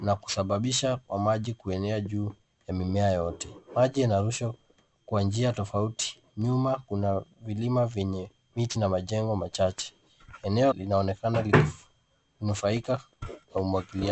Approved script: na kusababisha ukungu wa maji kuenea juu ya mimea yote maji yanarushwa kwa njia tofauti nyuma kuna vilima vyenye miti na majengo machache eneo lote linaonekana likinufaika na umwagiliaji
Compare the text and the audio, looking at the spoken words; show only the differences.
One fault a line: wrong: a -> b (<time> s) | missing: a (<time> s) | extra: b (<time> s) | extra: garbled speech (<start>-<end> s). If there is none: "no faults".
missing: ukungu (1.0 s)
missing: lote (10.7 s)